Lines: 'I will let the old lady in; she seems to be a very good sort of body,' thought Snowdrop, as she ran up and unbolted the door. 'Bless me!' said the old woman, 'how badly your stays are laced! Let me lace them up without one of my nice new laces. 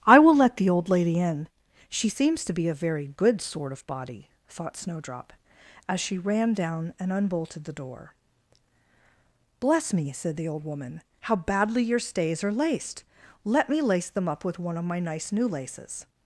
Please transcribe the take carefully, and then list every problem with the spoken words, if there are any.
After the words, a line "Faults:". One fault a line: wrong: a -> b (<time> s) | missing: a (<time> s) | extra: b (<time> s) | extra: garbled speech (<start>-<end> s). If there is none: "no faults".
'I will let the old lady in; she seems to be a very good sort of body,' thought Snowdrop, as she ran down and unbolted the door. 'Bless me!' said the old woman, 'how badly your stays are laced! Let me lace them up with one of my nice new laces.
Faults:
wrong: up -> down (6.5 s)
wrong: without -> with (14.4 s)